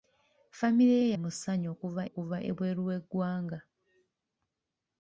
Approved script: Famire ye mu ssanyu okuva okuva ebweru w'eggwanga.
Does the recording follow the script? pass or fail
pass